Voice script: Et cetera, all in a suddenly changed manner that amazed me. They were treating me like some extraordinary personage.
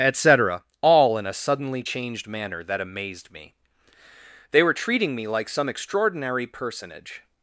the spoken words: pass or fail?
pass